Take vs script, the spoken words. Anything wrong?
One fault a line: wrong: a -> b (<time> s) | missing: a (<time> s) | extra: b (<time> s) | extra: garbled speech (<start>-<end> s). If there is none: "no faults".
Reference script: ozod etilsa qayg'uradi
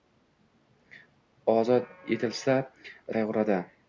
no faults